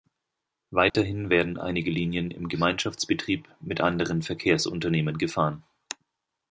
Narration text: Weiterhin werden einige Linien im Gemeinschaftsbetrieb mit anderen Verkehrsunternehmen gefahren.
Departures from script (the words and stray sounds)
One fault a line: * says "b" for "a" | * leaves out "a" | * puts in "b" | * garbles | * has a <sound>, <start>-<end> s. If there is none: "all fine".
* has a dropout, 0.9-0.9 s